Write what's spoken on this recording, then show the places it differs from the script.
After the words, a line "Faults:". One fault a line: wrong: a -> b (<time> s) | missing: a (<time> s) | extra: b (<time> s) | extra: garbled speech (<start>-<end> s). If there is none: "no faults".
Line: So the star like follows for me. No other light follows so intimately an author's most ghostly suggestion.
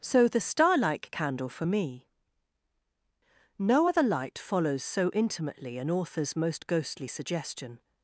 So the star like candle for me. No other light follows so intimately an author's most ghostly suggestion.
Faults:
wrong: follows -> candle (1.1 s)